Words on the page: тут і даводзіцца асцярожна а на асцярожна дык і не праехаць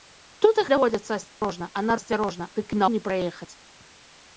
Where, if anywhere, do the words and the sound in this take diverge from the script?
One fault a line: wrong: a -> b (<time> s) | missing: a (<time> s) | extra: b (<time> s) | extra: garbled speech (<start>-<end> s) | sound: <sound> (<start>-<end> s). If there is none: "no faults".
sound: dropout (1.3-1.4 s)